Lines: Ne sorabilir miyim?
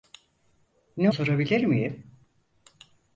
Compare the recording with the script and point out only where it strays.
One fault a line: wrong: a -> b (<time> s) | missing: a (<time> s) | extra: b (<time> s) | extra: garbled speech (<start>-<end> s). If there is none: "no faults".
no faults